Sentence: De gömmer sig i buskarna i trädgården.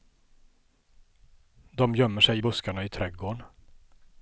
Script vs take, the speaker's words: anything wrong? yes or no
no